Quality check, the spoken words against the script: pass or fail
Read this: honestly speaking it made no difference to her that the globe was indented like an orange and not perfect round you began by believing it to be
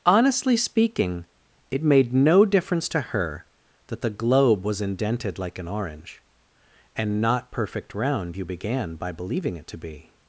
pass